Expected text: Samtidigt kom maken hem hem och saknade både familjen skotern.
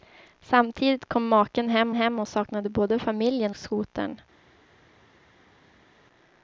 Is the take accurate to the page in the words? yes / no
yes